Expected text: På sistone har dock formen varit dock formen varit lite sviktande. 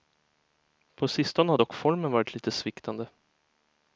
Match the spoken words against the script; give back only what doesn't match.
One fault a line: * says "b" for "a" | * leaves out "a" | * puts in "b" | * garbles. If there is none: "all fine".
* leaves out "dock formen varit"